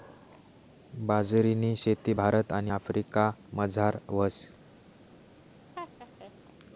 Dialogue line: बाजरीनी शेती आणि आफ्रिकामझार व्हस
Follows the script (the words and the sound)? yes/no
no